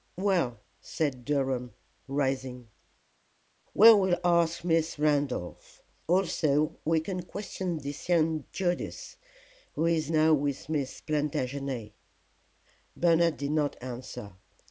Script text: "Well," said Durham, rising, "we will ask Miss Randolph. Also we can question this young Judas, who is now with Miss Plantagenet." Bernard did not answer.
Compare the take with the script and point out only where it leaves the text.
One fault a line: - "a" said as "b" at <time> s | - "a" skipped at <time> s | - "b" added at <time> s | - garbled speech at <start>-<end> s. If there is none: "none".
none